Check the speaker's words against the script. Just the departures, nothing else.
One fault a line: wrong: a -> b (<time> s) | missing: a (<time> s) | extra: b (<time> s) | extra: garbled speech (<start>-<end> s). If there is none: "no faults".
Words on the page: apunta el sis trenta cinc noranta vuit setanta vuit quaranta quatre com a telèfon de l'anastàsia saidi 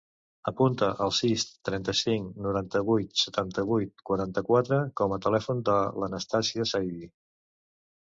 no faults